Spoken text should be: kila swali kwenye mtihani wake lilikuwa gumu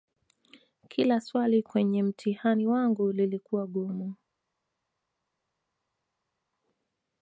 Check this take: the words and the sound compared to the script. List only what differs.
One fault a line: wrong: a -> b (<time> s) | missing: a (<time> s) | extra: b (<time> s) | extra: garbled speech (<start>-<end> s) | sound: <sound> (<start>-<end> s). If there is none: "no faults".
wrong: wake -> wangu (2.7 s)